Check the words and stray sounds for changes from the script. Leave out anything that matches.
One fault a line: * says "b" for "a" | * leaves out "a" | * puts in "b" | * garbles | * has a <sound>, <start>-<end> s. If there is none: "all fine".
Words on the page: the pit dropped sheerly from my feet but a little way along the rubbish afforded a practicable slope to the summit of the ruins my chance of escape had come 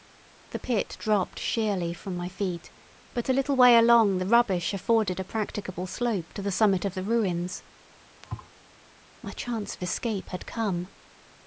* has a thud, 8.2-8.5 s